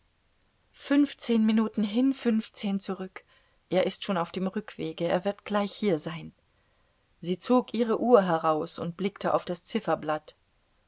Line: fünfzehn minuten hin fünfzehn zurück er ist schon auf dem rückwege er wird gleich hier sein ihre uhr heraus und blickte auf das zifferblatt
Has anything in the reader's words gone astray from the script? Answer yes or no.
yes